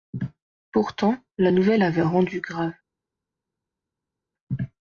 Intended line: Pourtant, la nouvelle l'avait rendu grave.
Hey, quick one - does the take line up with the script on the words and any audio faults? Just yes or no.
yes